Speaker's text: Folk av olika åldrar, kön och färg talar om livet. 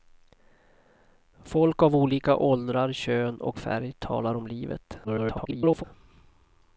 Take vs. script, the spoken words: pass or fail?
fail